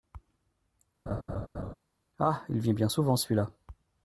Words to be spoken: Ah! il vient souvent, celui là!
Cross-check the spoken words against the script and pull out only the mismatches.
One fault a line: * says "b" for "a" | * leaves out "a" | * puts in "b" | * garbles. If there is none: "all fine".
* puts in "bien"